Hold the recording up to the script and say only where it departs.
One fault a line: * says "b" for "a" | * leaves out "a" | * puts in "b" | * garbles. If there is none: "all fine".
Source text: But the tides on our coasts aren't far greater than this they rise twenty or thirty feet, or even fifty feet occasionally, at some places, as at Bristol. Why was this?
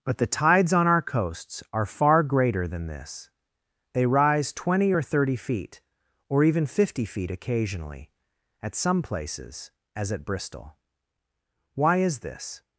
* says "are" for "aren't"
* says "is" for "was"